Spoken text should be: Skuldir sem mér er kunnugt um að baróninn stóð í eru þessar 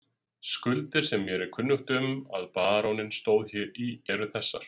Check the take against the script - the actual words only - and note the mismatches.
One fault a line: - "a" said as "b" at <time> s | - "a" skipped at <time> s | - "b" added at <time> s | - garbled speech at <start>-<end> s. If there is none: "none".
none